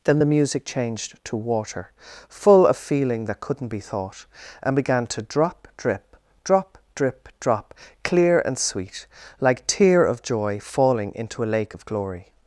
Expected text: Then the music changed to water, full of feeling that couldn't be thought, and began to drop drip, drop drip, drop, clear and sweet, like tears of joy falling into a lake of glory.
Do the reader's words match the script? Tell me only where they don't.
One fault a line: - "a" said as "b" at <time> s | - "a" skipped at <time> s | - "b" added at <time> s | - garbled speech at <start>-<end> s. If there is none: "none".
- "tears" said as "tear" at 9.7 s